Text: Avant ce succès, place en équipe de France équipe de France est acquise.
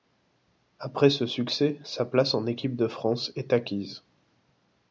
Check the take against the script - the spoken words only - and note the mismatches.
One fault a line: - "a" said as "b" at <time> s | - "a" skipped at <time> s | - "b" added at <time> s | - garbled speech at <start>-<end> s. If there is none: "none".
- "Avant" said as "Après" at 0.8 s
- "sa" added at 1.8 s
- "équipe de France" skipped at 3.3 s